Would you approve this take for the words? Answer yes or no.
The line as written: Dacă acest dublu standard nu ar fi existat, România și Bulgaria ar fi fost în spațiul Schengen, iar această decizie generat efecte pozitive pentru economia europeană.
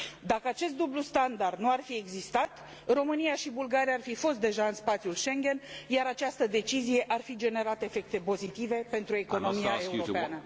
no